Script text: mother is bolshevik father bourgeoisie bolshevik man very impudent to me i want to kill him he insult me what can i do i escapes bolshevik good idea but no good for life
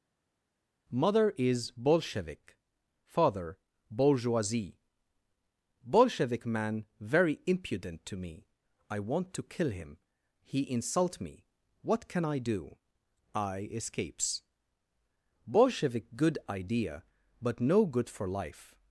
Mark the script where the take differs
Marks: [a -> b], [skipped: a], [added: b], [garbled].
mother is bolshevik father bourgeoisie bolshevik man very impudent to me i want to kill him he insult me what can i do i escapes bolshevik good idea but no good for life